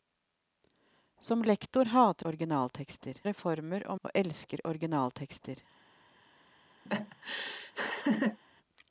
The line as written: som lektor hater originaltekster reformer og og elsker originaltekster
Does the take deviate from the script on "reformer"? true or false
false